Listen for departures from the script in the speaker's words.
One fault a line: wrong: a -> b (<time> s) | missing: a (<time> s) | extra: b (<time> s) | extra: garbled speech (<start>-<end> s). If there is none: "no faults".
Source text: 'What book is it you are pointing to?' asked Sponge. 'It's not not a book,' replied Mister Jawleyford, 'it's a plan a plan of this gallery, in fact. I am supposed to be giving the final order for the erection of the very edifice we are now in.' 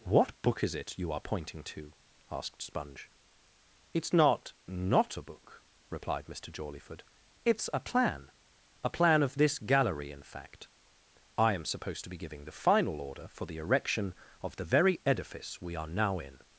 no faults